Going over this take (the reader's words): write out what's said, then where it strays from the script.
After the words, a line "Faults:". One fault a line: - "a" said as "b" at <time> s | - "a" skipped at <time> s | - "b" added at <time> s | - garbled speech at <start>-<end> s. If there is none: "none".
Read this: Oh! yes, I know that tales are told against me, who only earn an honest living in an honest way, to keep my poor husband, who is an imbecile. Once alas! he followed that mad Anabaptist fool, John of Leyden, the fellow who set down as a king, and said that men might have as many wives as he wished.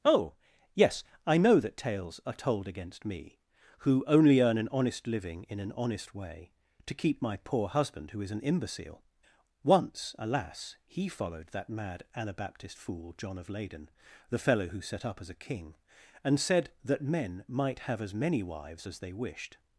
Oh! yes, I know that tales are told against me, who only earn an honest living in an honest way, to keep my poor husband, who is an imbecile. Once alas! he followed that mad Anabaptist fool, John of Leyden, the fellow who set up as a king, and said that men might have as many wives as they wished.
Faults:
- "down" said as "up" at 15.1 s
- "he" said as "they" at 19.0 s